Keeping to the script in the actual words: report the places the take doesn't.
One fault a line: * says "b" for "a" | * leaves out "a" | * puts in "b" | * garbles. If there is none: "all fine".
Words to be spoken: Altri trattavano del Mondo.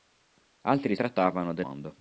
all fine